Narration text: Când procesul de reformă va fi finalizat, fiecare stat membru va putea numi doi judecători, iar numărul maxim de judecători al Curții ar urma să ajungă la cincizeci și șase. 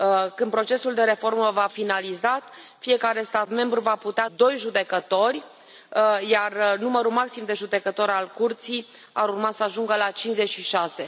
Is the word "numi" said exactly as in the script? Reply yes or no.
no